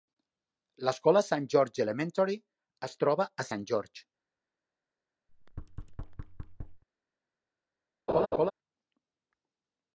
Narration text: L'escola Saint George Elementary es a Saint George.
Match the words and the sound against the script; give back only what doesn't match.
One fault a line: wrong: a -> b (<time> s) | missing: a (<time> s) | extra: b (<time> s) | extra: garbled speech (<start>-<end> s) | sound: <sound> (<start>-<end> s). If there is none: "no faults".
extra: troba (3.1 s)
sound: thud (5.3-6.8 s)
sound: laugh (8.1-8.5 s)